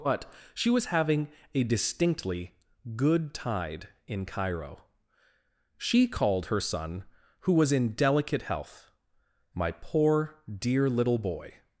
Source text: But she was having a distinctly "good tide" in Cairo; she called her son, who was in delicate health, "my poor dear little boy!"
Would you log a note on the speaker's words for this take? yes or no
no